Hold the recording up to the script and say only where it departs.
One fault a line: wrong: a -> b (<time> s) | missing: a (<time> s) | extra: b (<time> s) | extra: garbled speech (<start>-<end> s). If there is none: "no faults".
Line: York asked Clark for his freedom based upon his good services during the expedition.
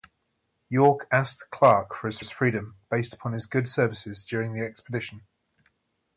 extra: his (2.2 s)